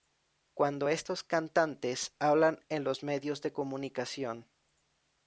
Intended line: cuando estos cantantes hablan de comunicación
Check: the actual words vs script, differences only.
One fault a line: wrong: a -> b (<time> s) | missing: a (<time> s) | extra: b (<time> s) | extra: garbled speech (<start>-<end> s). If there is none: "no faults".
extra: en los medios (2.7 s)